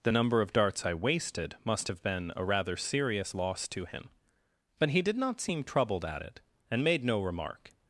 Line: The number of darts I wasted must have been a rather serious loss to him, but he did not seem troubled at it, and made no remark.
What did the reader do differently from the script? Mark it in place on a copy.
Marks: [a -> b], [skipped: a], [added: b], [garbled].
The number of darts I wasted must have been a rather serious loss to him, but he did not seem troubled at it, and made no remark.